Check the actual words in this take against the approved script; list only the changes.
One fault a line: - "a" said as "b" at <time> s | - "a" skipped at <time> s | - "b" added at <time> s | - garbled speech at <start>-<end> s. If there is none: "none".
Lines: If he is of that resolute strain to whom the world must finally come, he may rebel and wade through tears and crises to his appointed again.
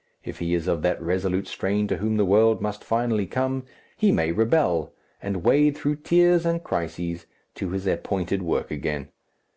- "work" added at 8.4 s